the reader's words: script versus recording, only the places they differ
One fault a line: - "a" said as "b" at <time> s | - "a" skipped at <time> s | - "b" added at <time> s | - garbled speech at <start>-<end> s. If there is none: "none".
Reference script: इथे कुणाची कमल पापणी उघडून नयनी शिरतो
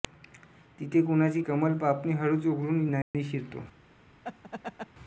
- "इथे" said as "तिथे" at 0.8 s
- "हळूच" added at 2.1 s